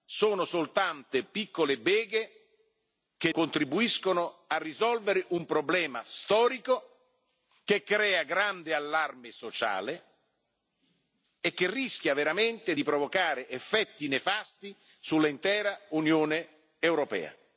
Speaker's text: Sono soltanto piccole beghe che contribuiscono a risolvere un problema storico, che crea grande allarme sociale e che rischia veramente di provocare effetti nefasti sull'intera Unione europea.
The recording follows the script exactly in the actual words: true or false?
true